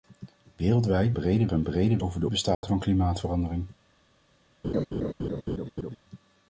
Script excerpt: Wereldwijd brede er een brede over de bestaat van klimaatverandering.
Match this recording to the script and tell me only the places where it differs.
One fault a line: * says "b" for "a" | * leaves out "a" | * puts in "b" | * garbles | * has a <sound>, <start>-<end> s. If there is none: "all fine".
* has a dropout, 2.5-2.6 s
* has a laugh, 4.6-6.0 s